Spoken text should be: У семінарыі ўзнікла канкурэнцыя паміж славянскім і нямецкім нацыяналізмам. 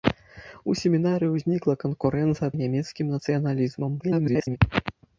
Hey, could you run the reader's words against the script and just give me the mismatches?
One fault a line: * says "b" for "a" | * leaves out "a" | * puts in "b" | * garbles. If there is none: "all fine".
* leaves out "паміж славянскім"
* garbles